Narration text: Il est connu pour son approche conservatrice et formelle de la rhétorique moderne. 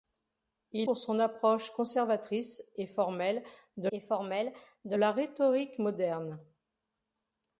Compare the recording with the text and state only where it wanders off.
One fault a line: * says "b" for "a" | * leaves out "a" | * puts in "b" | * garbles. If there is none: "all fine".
* leaves out "est connu"
* puts in "et formelle de"